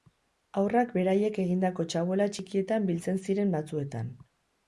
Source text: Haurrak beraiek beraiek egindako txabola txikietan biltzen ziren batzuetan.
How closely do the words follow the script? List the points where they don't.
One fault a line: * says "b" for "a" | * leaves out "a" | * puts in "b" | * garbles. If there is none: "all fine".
* leaves out "beraiek"